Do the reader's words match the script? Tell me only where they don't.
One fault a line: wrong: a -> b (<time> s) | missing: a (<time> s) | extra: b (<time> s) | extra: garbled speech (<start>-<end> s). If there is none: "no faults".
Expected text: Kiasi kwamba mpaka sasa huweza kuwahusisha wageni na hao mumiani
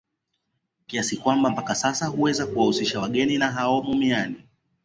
no faults